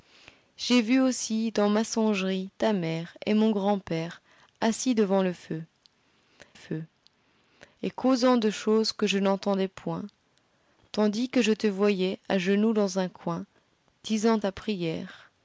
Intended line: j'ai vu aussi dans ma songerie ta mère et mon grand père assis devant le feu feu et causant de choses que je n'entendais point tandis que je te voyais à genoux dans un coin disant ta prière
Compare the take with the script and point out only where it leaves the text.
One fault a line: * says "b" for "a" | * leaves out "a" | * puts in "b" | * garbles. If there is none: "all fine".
all fine